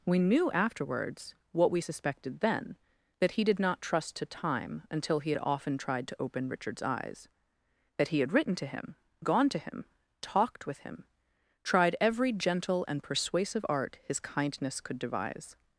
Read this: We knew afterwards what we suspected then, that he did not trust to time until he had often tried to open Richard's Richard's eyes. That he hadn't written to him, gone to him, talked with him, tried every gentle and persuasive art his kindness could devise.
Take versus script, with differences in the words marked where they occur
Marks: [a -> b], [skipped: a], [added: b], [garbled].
We knew afterwards what we suspected then, that he did not trust to time until he had often tried to open Richard's [skipped: Richard's] eyes. That he [hadn't -> had] written to him, gone to him, talked with him, tried every gentle and persuasive art his kindness could devise.